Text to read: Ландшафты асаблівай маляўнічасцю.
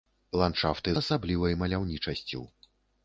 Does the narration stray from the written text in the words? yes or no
no